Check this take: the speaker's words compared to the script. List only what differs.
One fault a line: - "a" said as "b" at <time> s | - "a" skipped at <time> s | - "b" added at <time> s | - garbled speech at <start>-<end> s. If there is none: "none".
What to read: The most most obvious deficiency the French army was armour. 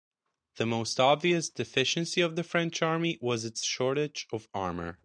- "most" skipped at 1.0 s
- "of" added at 2.2 s
- "its shortage of" added at 3.5 s